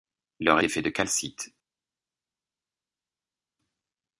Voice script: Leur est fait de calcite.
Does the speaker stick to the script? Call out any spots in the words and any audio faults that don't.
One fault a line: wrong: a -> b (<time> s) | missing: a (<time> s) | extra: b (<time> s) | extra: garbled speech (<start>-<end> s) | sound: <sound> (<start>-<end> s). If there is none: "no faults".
no faults